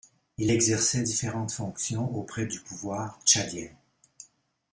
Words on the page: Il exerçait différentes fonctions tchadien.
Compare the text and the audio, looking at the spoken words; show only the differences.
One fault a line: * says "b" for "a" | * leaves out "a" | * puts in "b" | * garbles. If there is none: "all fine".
* puts in "auprès du pouvoir"